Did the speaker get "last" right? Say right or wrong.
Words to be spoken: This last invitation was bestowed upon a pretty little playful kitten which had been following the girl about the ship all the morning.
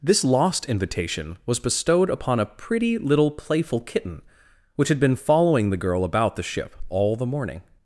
wrong